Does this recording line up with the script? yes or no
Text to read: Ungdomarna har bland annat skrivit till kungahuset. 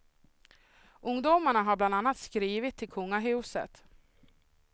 yes